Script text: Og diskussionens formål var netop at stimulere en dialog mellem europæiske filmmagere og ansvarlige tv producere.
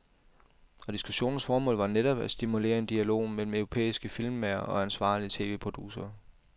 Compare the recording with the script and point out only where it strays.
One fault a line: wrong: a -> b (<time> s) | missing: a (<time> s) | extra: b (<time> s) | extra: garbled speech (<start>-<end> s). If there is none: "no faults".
no faults